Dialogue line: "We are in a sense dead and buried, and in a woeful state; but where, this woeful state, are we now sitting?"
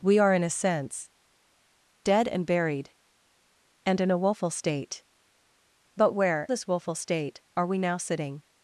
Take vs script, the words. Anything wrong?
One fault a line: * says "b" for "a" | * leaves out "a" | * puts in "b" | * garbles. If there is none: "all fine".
all fine